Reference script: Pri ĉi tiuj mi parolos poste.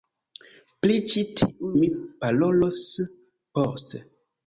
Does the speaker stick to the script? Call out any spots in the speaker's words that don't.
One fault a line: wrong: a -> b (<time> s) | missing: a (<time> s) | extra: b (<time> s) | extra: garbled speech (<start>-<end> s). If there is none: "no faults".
no faults